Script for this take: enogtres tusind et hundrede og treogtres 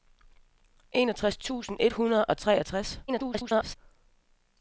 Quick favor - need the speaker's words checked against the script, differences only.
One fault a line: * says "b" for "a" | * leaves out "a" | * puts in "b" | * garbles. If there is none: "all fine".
* garbles